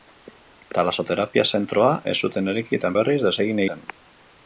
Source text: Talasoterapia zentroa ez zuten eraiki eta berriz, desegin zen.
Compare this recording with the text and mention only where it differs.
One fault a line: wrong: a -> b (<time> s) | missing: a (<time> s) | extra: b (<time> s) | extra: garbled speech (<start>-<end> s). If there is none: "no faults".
no faults